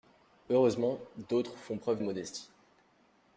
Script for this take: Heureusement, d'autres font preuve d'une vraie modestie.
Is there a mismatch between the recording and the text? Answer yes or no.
yes